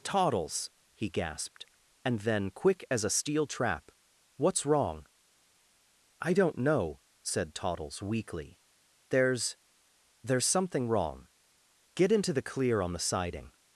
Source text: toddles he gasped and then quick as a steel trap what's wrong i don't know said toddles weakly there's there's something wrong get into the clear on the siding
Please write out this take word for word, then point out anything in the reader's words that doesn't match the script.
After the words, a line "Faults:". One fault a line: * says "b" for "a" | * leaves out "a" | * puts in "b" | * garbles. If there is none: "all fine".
toddles he gasped and then quick as a steel trap what's wrong i don't know said toddles weakly there's there's something wrong get into the clear on the siding
Faults:
all fine